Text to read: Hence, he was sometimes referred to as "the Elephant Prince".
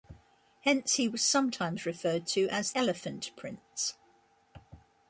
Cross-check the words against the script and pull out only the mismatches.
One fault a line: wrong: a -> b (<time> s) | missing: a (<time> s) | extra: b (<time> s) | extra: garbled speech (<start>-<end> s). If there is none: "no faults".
missing: the (2.7 s)